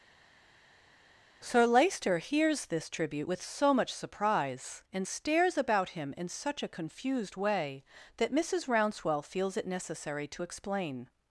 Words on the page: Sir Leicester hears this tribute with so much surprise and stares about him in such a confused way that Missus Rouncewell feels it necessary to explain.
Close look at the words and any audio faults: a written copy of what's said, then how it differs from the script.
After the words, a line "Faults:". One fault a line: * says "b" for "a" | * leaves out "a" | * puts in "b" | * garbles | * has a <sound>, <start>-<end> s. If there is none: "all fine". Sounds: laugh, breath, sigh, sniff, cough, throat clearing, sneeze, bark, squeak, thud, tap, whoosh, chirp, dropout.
Sir Leicester hears this tribute with so much surprise and stares about him in such a confused way that Missus Rouncewell feels it necessary to explain.
Faults:
all fine